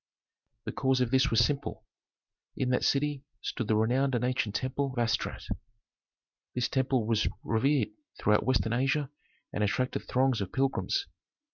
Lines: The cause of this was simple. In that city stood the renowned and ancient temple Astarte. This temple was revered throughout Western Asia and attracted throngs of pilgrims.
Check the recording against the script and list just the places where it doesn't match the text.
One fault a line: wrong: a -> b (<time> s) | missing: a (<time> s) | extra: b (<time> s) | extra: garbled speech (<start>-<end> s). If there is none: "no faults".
no faults